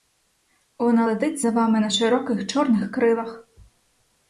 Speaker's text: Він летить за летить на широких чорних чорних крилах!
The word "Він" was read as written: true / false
false